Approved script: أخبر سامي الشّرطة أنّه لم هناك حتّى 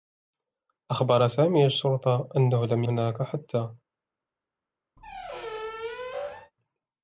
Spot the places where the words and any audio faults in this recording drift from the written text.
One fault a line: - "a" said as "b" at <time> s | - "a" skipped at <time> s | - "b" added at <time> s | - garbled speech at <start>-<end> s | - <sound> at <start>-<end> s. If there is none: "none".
- squeak at 5.0-6.5 s